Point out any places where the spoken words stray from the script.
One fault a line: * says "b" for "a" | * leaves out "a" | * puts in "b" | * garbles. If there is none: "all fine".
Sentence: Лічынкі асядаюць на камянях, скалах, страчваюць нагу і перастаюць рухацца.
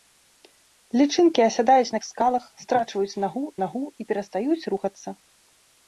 * leaves out "камянях"
* puts in "нагу"